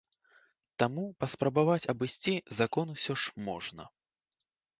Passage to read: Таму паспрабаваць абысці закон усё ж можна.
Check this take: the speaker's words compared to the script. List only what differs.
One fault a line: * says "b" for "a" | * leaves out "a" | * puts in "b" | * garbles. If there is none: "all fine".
all fine